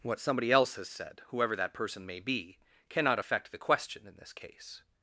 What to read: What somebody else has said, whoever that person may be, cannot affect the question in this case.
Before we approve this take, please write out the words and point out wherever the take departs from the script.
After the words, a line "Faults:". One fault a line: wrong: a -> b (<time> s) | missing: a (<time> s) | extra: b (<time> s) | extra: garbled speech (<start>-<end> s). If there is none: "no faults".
What somebody else has said, whoever that person may be, cannot affect the question in this case.
Faults:
no faults